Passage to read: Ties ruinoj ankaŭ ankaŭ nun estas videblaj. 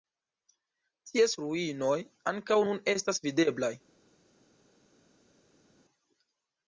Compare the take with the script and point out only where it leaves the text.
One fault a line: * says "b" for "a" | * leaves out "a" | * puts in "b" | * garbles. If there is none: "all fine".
* leaves out "ankaŭ"